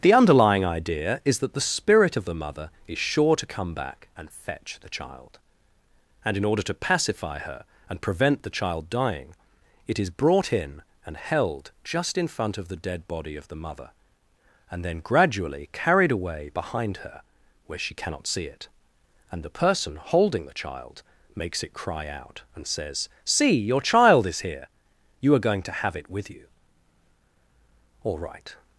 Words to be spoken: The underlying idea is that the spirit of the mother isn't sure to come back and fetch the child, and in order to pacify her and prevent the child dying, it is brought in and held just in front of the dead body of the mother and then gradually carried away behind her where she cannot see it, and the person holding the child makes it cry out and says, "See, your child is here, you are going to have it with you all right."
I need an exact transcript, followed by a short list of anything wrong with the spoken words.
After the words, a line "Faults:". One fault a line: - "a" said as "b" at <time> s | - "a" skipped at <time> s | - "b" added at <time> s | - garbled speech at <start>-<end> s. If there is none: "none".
The underlying idea is that the spirit of the mother is sure to come back and fetch the child, and in order to pacify her and prevent the child dying, it is brought in and held just in front of the dead body of the mother and then gradually carried away behind her where she cannot see it, and the person holding the child makes it cry out and says, "See, your child is here, you are going to have it with you all right."
Faults:
- "isn't" said as "is" at 2.9 s